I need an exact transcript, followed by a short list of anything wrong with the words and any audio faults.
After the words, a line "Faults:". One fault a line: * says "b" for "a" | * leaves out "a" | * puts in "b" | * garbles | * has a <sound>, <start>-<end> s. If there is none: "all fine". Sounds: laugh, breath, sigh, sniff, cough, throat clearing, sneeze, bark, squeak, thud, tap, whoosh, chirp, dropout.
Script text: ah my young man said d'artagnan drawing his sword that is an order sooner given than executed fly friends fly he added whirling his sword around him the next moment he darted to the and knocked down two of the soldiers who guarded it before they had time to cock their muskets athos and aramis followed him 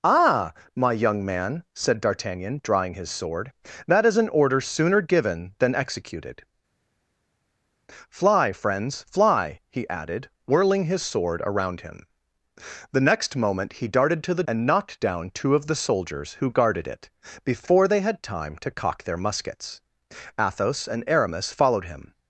ah my young man said d'artagnan drawing his sword that is an order sooner given than executed fly friends fly he added whirling his sword around him the next moment he darted to the and knocked down two of the soldiers who guarded it before they had time to cock their muskets athos and aramis followed him
Faults:
all fine